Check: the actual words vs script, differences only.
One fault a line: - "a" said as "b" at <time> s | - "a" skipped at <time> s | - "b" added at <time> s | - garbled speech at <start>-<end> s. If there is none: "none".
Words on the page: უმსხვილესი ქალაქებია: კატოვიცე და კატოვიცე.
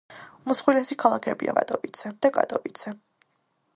none